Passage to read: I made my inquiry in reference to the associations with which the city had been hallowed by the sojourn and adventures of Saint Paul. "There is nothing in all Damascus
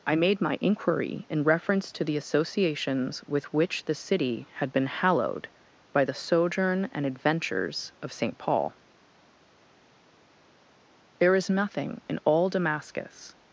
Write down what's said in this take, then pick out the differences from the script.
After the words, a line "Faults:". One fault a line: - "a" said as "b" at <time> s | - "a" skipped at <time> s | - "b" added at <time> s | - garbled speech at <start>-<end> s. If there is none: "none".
I made my inquiry in reference to the associations with which the city had been hallowed by the sojourn and adventures of Saint Paul. "There is nothing in all Damascus
Faults:
none